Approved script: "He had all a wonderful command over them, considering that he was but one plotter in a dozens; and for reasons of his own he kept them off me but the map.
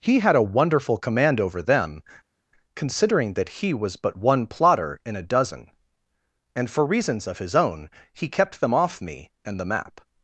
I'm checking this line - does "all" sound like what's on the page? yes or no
no